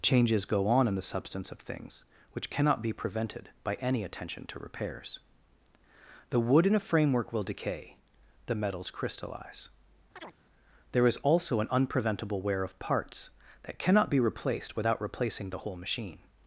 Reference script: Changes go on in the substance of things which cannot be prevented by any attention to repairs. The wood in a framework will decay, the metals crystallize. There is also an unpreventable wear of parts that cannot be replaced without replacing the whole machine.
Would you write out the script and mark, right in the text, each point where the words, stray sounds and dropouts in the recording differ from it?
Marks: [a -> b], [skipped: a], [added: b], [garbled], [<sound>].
Changes go on in the substance of things which cannot be prevented by any attention to repairs. The wood in a framework will decay, the metals crystallize. [chirp] There is also an unpreventable wear of parts that cannot be replaced without replacing the whole machine.